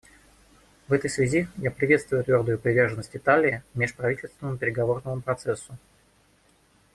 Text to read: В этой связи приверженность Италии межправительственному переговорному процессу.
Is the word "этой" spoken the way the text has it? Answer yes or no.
yes